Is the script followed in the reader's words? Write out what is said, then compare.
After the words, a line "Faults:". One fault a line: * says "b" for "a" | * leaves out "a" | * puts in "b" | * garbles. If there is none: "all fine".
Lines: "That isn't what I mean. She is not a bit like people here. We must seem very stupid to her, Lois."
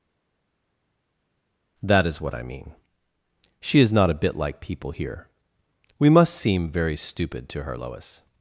"That is what I mean. She is not a bit like people here. We must seem very stupid to her, Lois."
Faults:
* says "is" for "isn't"